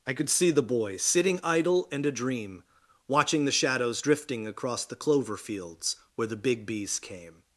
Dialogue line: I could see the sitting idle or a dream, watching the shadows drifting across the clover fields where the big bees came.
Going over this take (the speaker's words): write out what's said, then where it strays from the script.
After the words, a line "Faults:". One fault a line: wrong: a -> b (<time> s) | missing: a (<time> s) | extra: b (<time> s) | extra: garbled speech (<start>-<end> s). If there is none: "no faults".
I could see the boy, sitting idle and a dream, watching the shadows drifting across the clover fields where the big bees came.
Faults:
extra: boy (0.6 s)
wrong: or -> and (1.9 s)